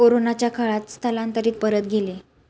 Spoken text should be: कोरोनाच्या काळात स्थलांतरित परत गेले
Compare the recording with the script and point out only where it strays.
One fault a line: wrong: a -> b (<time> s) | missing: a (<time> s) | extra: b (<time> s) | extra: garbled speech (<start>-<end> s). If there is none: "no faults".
no faults